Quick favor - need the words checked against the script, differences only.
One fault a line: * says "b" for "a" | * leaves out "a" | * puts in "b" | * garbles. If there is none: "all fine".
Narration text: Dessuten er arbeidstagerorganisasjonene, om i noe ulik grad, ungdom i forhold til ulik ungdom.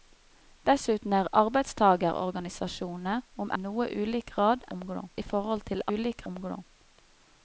all fine